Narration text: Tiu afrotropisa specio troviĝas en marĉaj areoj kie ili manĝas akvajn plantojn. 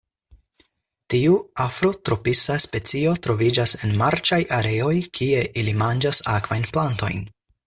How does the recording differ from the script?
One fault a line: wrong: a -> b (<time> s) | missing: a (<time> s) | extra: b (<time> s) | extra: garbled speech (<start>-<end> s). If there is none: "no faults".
no faults